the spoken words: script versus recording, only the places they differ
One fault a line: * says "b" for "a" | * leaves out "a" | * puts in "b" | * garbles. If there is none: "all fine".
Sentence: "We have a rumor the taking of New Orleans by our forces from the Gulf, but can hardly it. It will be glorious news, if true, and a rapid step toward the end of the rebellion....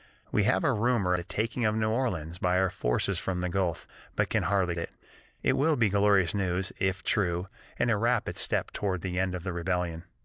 all fine